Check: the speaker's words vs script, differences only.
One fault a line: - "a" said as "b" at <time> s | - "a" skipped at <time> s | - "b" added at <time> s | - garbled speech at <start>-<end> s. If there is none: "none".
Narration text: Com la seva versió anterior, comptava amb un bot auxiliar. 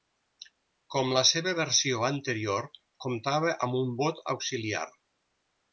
none